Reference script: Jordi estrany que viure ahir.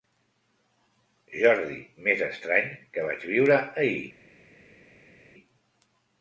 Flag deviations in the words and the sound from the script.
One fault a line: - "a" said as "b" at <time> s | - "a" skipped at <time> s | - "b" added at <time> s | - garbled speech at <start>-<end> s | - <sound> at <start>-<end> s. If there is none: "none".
- "més" added at 2.1 s
- "vaig" added at 3.1 s